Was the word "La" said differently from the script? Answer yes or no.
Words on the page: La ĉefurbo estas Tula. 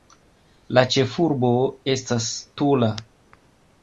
no